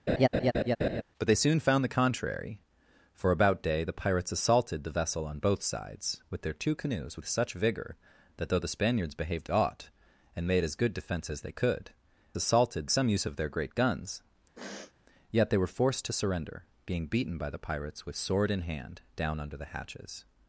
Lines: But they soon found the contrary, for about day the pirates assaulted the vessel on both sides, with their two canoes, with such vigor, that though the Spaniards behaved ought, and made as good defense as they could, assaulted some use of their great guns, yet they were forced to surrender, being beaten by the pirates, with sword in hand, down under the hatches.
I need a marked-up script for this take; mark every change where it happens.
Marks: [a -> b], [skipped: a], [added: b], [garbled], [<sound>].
[laugh] But they soon found the contrary, for about day the pirates assaulted the vessel on both sides, with their two canoes, with such vigor, that though the Spaniards behaved ought, and made as good defense as they could, assaulted some use of their great guns, [sniff] yet they were forced to surrender, being beaten by the pirates, with sword in hand, down under the hatches.